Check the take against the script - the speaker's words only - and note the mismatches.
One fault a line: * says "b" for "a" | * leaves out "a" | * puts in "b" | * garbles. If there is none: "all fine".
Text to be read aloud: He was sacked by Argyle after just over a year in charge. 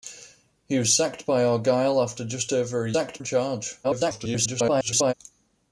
* says "sacked" for "year"
* garbles